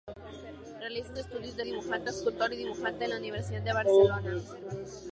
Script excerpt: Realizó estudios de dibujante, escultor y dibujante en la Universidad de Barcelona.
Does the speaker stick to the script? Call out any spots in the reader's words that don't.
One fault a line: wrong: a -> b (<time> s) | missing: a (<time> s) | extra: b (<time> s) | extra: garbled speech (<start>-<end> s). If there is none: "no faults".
no faults